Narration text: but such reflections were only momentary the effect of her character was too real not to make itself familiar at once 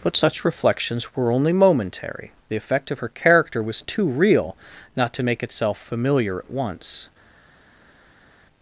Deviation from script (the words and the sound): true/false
false